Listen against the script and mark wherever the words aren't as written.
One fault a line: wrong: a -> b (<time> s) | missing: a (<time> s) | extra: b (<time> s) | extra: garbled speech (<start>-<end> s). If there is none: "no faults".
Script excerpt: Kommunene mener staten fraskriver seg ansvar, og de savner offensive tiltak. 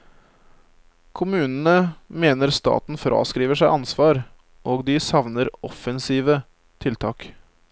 no faults